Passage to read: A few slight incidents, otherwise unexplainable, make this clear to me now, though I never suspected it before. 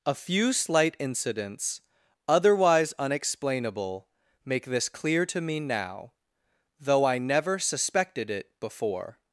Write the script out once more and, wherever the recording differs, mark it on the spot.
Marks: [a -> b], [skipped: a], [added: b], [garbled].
A few slight incidents, otherwise unexplainable, make this clear to me now, though I never suspected it before.